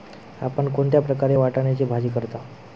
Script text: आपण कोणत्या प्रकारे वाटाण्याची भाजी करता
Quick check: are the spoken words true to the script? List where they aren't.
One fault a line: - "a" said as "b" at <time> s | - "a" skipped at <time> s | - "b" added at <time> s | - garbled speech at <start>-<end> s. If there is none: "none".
none